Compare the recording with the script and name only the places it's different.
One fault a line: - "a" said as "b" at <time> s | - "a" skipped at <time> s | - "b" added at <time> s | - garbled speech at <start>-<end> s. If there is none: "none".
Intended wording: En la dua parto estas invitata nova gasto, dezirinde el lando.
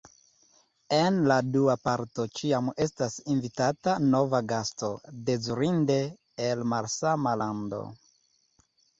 - "ĉiam" added at 2.4 s
- "malsama" added at 6.7 s